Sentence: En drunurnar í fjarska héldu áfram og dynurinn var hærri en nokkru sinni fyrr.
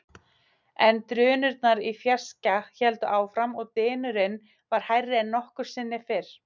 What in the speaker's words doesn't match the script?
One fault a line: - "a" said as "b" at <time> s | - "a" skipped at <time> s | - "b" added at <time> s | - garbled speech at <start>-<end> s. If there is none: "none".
none